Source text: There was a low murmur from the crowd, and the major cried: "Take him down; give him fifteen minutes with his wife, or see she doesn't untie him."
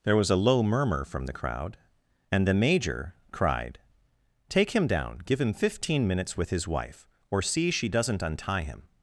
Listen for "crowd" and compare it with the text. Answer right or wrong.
right